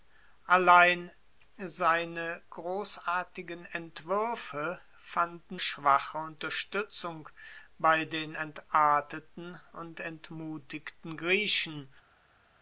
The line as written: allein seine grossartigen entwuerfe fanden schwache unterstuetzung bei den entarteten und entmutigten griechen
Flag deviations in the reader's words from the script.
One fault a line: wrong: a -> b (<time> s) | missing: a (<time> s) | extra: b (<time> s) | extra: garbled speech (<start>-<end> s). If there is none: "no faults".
no faults